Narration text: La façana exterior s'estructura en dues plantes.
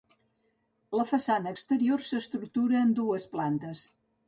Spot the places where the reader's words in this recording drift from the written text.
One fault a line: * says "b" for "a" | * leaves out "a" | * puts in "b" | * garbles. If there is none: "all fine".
all fine